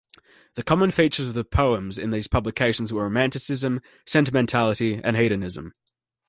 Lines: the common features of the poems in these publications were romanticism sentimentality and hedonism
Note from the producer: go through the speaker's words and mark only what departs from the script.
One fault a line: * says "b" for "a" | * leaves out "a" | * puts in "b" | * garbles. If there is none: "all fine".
all fine